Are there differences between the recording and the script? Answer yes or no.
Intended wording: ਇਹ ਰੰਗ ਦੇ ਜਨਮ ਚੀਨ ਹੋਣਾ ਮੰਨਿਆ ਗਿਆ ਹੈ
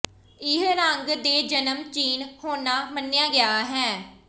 no